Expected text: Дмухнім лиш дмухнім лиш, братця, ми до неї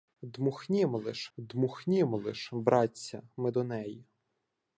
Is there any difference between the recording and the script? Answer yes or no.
no